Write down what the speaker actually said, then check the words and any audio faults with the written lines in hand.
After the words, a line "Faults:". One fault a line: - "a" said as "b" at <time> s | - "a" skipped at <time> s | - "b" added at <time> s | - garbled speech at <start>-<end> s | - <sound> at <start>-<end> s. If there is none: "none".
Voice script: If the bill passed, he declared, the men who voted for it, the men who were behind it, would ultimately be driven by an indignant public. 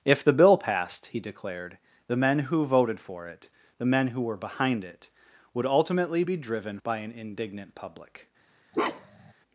If the bill passed, he declared, the men who voted for it, the men who were behind it, would ultimately be driven by an indignant public.
Faults:
- bark at 8.7-9.3 s